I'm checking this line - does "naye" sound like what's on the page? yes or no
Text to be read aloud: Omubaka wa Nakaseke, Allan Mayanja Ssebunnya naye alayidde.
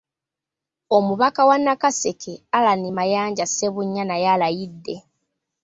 yes